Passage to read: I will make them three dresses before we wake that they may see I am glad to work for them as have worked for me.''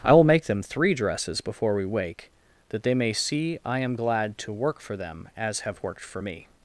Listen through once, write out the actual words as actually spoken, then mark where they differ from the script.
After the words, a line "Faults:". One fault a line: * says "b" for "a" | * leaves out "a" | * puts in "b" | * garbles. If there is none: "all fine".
I will make them three dresses before we wake that they may see I am glad to work for them as have worked for me.''
Faults:
all fine